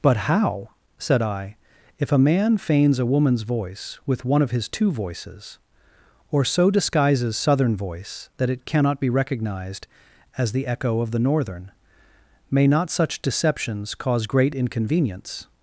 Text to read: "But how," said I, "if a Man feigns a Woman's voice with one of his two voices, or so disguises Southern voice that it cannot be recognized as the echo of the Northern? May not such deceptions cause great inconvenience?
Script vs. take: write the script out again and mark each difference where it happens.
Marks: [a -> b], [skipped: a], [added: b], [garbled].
"But how," said I, "if a Man feigns a Woman's voice with one of his two voices, or so disguises Southern voice that it cannot be recognized as the echo of the Northern? May not such deceptions cause great inconvenience?